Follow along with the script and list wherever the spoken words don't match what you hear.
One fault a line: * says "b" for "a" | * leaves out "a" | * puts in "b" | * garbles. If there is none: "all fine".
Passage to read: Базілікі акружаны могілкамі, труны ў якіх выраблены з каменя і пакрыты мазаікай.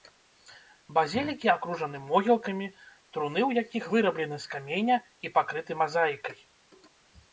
all fine